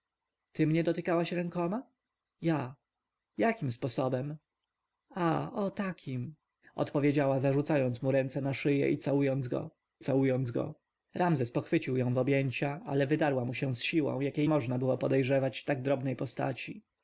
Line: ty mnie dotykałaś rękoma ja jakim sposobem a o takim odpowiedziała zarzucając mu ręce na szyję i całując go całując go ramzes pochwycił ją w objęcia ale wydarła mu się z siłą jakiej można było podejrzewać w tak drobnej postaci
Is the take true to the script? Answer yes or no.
yes